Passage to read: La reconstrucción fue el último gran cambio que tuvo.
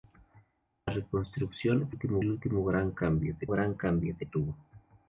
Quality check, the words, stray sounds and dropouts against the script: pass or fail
fail